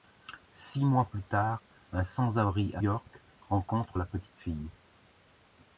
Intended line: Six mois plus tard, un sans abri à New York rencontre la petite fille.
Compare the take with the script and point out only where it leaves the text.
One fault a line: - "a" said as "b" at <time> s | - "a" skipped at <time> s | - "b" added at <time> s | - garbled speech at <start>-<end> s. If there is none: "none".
- "New" skipped at 2.8 s